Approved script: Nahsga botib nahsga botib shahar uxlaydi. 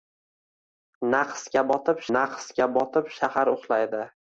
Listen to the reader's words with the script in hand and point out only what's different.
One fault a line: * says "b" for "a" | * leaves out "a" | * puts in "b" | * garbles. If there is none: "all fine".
all fine